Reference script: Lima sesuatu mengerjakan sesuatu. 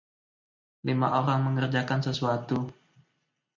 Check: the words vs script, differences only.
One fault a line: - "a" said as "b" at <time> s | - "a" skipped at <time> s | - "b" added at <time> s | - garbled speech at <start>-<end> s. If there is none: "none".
- "sesuatu" said as "orang" at 1.1 s